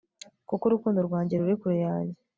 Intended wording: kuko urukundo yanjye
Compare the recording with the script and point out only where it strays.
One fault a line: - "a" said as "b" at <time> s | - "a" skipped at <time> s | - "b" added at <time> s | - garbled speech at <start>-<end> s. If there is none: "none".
- "rwanjye ruri kure" added at 1.1 s